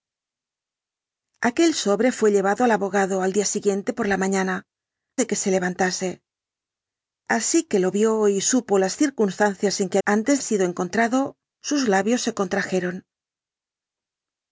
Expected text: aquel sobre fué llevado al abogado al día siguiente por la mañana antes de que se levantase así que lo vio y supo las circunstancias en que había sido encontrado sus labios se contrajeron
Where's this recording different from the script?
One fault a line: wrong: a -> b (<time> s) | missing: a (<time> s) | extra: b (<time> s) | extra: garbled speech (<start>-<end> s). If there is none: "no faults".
missing: antes (4.7 s)
wrong: había -> antes (10.0 s)